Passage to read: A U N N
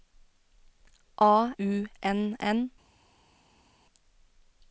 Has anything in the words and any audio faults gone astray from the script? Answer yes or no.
no